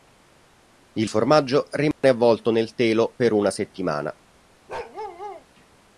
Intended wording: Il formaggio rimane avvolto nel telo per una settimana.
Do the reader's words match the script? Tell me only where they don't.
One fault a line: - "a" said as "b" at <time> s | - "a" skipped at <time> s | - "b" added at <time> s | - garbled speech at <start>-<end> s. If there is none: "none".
none